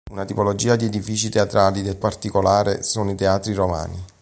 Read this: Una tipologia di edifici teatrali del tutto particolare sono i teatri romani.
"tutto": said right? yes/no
no